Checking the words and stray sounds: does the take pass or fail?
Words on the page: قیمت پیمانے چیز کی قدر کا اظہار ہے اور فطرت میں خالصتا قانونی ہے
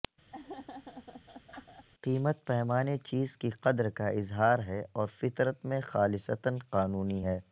fail